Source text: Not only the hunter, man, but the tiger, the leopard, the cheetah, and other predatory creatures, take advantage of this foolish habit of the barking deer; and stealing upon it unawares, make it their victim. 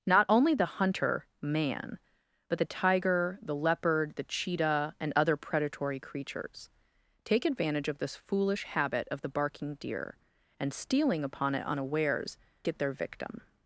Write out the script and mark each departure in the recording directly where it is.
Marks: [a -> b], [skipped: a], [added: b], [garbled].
Not only the hunter, man, but the tiger, the leopard, the cheetah, and other predatory creatures, take advantage of this foolish habit of the barking deer; and stealing upon it unawares, [skipped: make] it their victim.